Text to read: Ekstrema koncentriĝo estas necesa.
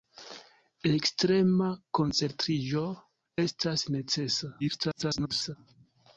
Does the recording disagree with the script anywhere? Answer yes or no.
yes